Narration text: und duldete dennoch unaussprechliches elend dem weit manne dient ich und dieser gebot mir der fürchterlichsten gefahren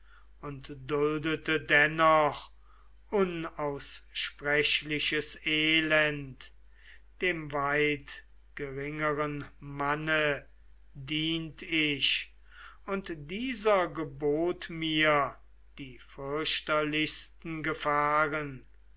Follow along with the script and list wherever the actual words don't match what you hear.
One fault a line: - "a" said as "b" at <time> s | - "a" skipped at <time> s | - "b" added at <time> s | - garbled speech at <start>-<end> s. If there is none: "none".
- "geringeren" added at 8.6 s
- "der" said as "die" at 15.8 s